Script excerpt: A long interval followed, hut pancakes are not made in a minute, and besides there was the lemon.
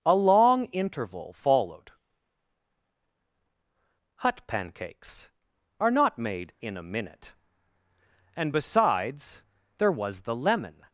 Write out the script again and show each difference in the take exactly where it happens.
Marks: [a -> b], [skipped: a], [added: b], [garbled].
A long interval followed, hut pancakes are not made in a minute, and besides there was the lemon.